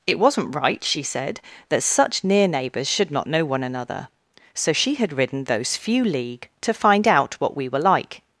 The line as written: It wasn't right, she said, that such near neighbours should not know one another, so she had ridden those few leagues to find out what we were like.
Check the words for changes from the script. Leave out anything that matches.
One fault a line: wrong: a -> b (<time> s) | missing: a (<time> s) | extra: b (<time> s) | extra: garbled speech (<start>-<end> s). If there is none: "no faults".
wrong: leagues -> league (6.0 s)